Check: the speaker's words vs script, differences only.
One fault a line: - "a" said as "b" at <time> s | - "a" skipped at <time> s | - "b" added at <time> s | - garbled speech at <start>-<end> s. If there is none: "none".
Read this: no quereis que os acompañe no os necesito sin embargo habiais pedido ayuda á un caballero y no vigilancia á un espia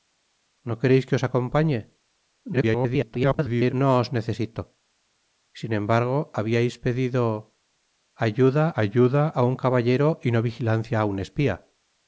- garbled speech at 2.5-3.7 s
- "ayuda" added at 8.8 s